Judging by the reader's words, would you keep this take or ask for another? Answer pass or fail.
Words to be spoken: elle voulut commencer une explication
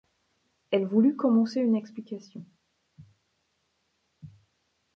pass